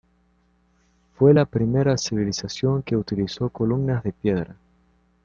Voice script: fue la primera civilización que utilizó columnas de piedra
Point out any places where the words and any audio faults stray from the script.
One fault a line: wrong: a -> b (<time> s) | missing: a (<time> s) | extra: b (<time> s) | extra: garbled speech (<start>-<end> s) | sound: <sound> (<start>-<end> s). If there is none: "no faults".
no faults